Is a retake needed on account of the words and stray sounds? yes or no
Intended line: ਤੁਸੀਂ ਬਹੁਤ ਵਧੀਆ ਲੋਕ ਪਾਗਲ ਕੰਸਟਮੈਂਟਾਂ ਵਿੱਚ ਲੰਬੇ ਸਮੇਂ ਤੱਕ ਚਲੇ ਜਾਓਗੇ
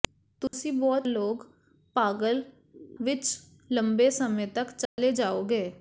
yes